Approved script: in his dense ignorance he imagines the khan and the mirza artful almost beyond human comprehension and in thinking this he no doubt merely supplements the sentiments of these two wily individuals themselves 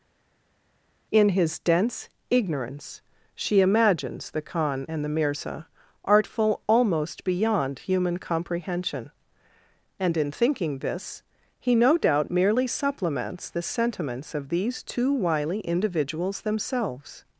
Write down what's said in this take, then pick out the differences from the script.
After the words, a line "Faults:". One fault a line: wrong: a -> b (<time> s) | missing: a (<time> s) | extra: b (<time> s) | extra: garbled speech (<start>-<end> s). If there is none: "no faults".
in his dense ignorance she imagines the khan and the mirza artful almost beyond human comprehension and in thinking this he no doubt merely supplements the sentiments of these two wily individuals themselves
Faults:
wrong: he -> she (3.3 s)